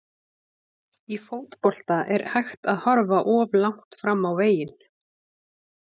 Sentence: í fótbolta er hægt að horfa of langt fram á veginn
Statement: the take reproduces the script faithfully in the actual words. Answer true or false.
true